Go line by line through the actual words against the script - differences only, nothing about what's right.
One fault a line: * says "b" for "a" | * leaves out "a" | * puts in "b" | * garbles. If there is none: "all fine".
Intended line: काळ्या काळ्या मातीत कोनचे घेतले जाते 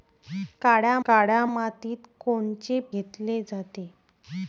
all fine